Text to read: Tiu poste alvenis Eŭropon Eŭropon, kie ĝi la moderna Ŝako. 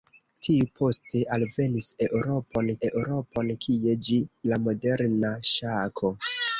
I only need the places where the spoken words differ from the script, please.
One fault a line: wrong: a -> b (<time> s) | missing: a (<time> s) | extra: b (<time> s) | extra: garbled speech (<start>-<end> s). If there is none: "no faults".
no faults